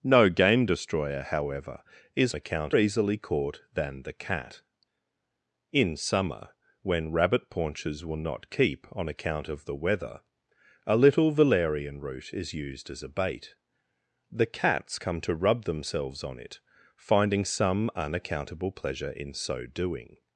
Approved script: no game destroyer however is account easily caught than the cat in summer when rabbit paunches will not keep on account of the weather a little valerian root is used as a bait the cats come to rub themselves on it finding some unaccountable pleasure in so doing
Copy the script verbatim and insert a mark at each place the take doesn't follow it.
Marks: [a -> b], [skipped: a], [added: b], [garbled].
no game destroyer however is account easily caught than the cat in summer when rabbit paunches will not keep on account of the weather a little valerian root is used as a bait the cats come to rub themselves on it finding some unaccountable pleasure in so doing